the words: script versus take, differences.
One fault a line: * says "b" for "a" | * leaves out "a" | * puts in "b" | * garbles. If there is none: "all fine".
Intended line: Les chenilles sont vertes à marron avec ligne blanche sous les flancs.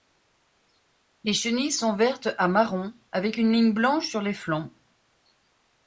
* puts in "une"
* says "sur" for "sous"